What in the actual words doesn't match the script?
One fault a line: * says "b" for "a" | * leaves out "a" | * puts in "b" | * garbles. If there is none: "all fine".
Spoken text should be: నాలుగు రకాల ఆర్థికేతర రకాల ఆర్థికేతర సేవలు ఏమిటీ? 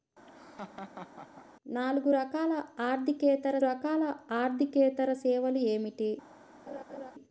all fine